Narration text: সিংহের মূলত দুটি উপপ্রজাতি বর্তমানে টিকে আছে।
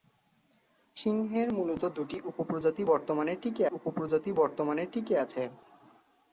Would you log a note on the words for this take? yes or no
yes